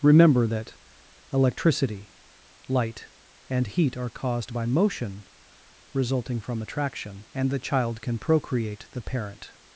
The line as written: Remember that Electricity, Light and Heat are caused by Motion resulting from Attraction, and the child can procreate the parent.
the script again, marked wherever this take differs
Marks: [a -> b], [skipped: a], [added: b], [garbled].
Remember that Electricity, Light and Heat are caused by Motion resulting from Attraction, and the child can procreate the parent.